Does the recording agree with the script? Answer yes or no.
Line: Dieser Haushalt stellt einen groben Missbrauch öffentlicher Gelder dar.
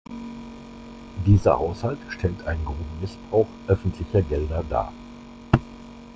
yes